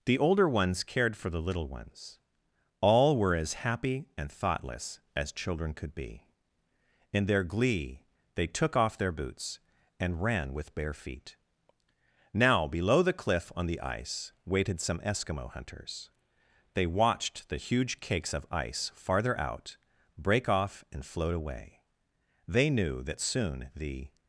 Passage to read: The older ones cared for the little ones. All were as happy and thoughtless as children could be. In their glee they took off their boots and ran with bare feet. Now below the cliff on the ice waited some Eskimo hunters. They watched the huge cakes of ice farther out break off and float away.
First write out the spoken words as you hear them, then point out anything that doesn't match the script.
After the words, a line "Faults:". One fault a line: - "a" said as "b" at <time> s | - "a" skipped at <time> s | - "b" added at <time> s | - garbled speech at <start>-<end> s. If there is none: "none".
The older ones cared for the little ones. All were as happy and thoughtless as children could be. In their glee they took off their boots and ran with bare feet. Now below the cliff on the ice waited some Eskimo hunters. They watched the huge cakes of ice farther out break off and float away. They knew that soon the
Faults:
- "They knew that soon the" added at 22.5 s